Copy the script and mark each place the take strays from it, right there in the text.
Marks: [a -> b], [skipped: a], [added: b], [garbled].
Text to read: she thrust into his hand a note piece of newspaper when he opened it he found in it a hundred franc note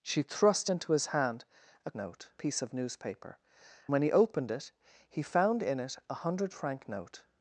she thrust into his hand a note piece of newspaper when he opened it he found in it a hundred franc note